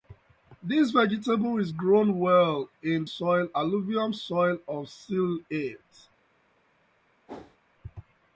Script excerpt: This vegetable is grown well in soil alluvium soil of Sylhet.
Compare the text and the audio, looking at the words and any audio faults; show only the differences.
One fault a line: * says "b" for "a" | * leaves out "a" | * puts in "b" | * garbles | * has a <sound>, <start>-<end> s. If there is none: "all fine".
* has a whoosh, 7.3-7.6 s